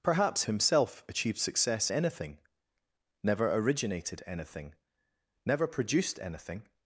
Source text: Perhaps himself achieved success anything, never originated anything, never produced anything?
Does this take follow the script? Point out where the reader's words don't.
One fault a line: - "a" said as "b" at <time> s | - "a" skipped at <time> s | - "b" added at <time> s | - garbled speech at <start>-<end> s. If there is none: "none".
none